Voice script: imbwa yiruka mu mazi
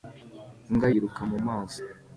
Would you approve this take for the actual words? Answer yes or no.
yes